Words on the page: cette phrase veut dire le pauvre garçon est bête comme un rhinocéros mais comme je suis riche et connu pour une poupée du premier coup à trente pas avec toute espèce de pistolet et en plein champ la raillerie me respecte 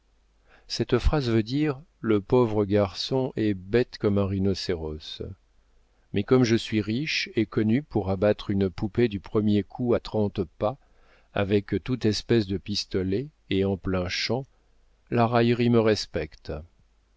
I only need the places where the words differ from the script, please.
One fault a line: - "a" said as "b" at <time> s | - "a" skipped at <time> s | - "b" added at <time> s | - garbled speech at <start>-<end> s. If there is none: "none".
- "abattre" added at 8.1 s